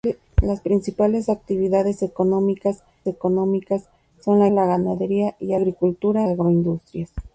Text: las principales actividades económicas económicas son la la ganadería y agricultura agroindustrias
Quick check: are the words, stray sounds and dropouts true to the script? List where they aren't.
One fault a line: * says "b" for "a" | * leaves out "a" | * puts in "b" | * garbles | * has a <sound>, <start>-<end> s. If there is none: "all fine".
all fine